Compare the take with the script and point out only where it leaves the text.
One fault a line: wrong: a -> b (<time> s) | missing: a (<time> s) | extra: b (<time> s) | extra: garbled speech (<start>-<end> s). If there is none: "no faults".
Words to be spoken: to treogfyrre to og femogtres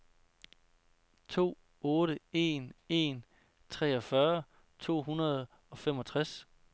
extra: otte en en (1.8 s)
extra: hundrede (5.0 s)